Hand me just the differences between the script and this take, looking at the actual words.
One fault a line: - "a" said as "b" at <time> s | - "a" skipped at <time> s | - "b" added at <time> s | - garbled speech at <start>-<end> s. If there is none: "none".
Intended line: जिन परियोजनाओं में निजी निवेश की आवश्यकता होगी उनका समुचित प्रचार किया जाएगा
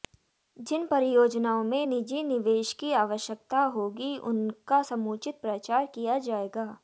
none